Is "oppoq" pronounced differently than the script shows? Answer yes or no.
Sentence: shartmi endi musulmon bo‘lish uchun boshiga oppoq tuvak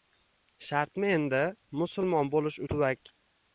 yes